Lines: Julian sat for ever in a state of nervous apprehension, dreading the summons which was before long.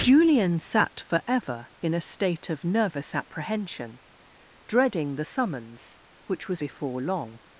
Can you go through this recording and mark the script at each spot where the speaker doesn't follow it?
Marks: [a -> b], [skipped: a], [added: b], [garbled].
Julian sat for ever in a state of nervous apprehension, dreading the summons which was before long.